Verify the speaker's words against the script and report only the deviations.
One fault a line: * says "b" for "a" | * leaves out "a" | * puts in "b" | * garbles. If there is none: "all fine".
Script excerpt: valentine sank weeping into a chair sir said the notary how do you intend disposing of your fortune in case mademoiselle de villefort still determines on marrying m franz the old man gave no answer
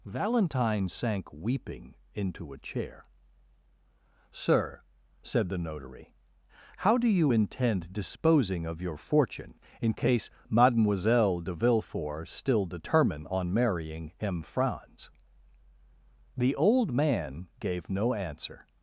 * says "determine" for "determines"